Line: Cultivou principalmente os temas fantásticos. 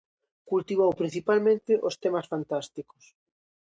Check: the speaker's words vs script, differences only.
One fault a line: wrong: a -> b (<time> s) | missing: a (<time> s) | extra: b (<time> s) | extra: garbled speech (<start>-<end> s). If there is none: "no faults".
no faults